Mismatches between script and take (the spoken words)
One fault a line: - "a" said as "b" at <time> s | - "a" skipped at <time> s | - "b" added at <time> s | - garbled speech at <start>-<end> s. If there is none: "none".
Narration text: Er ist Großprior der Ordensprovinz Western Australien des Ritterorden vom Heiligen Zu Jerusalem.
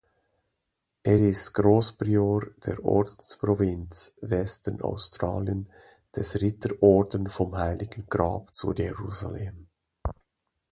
- "Grab" added at 8.1 s